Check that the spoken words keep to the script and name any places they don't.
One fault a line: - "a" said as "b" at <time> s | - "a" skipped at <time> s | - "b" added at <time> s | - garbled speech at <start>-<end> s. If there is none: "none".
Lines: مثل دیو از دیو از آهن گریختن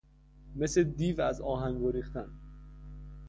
- "دیو از" skipped at 1.4 s